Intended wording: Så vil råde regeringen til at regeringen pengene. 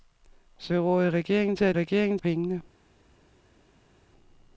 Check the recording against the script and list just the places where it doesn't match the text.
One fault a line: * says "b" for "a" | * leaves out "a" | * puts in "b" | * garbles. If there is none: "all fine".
all fine